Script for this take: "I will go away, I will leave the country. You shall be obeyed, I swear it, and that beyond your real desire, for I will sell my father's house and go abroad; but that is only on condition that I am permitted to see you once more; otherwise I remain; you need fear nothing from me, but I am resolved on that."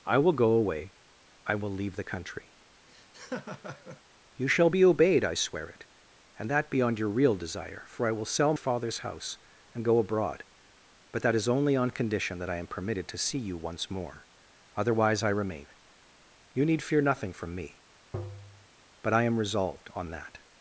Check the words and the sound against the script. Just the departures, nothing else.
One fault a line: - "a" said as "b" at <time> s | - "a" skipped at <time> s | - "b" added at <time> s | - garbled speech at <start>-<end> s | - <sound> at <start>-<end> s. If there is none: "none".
- laugh at 2.9-4.0 s
- "my" skipped at 8.5 s
- tap at 18.1-18.7 s